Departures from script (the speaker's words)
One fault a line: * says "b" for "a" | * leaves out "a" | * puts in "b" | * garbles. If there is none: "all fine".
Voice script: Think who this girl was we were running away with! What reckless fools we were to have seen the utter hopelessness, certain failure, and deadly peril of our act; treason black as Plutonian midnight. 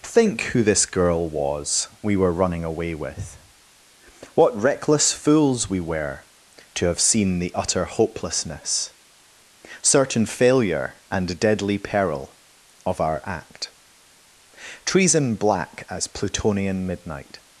all fine